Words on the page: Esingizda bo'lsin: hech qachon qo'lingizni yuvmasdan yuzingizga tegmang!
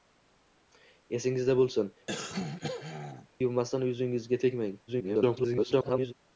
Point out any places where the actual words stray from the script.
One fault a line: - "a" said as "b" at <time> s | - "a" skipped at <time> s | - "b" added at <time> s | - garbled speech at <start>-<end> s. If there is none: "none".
- "hech qachon qo'lingizni" skipped at 1.9 s
- garbled speech at 4.9-6.1 s